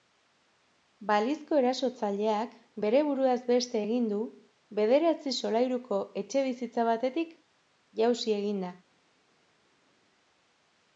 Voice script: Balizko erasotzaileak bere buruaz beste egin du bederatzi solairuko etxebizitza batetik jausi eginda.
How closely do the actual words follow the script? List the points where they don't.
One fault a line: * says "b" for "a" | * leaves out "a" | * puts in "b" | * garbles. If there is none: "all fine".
all fine